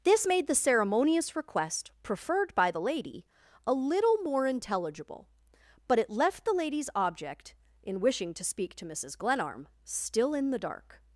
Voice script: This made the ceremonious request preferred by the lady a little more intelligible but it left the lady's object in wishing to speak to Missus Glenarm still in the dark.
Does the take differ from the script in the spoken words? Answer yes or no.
no